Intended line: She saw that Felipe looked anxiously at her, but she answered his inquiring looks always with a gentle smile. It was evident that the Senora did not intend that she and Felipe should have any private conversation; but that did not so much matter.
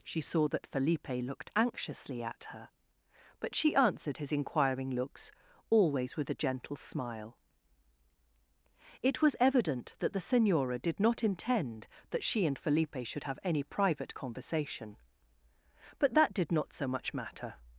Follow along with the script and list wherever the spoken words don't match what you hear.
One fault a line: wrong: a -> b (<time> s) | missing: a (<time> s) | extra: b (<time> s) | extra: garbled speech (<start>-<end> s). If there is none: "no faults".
no faults